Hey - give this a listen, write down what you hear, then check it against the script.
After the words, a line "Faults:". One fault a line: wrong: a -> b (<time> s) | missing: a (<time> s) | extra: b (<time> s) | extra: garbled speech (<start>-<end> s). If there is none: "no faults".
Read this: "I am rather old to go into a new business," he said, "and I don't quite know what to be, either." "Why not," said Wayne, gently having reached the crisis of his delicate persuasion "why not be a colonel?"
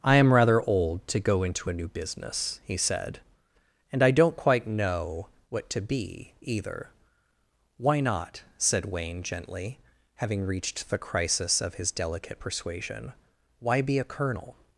"I am rather old to go into a new business," he said, "and I don't quite know what to be, either." "Why not," said Wayne, gently having reached the crisis of his delicate persuasion "why be a colonel?"
Faults:
missing: not (13.8 s)